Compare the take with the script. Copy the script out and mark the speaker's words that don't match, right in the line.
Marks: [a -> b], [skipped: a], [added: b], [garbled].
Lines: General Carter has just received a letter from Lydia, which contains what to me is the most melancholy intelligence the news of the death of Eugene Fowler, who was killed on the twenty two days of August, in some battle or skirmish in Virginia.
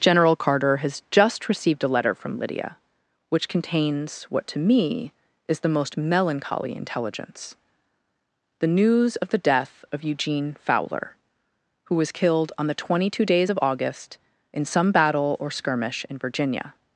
General Carter has just received a letter from Lydia, which contains what to me is the most melancholy intelligence the news of the death of Eugene Fowler, who was killed on the twenty two days of August, in some battle or skirmish in Virginia.